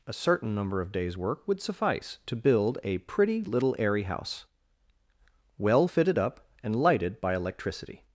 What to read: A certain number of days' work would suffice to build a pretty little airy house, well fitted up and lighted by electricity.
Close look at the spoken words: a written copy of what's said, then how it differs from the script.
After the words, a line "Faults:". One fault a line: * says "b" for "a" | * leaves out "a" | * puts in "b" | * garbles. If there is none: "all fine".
A certain number of days' work would suffice to build a pretty little airy house, well fitted up and lighted by electricity.
Faults:
all fine